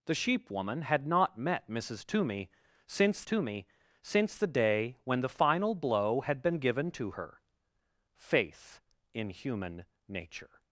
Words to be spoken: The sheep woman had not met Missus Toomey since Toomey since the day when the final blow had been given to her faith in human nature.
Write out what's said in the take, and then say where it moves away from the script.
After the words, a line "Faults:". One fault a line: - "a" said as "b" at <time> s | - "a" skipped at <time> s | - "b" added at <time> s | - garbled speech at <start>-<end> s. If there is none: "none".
The sheep woman had not met Missus Toomey since Toomey since the day when the final blow had been given to her faith in human nature.
Faults:
none